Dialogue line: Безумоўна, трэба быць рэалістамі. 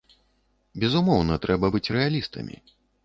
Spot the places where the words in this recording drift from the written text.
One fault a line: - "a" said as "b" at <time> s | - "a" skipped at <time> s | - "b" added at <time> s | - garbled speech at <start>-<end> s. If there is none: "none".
none